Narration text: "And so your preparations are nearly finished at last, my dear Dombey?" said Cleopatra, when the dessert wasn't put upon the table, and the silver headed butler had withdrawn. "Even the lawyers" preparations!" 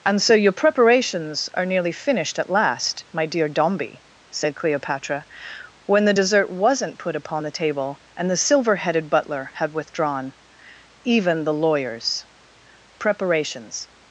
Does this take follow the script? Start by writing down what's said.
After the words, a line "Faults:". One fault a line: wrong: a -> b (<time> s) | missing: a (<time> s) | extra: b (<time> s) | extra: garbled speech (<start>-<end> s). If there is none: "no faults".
"And so your preparations are nearly finished at last, my dear Dombey?" said Cleopatra, when the dessert wasn't put upon the table, and the silver headed butler had withdrawn. "Even the lawyers" preparations!"
Faults:
no faults